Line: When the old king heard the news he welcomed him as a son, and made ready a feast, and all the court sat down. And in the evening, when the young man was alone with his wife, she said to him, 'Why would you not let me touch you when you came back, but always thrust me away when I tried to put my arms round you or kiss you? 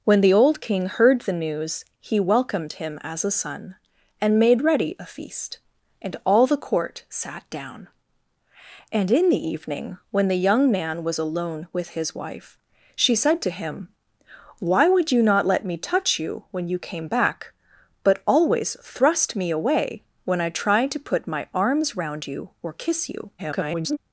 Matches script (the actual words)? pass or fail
fail